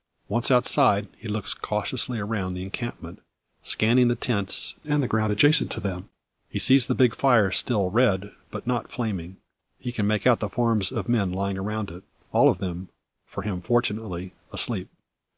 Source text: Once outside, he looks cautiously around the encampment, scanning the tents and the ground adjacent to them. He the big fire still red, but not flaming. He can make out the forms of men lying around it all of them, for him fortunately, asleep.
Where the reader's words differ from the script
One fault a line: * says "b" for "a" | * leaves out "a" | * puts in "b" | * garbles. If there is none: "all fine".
* puts in "sees"